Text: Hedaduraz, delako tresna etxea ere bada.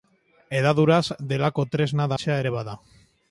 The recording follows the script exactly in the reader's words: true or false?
true